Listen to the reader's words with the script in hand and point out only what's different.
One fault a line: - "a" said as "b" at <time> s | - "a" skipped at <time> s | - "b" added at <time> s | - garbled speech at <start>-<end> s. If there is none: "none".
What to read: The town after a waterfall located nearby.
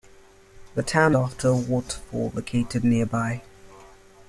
none